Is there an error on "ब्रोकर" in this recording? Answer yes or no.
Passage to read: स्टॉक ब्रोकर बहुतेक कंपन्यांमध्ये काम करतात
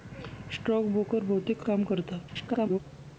no